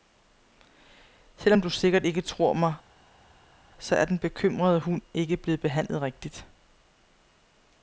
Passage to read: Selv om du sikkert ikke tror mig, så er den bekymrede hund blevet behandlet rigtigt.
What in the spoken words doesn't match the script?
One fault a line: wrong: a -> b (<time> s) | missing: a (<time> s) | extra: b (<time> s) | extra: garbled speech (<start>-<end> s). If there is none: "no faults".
extra: ikke (5.1 s)